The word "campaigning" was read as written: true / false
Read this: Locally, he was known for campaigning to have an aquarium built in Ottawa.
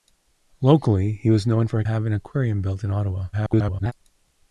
false